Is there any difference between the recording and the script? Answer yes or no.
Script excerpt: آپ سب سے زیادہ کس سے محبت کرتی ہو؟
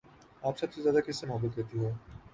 no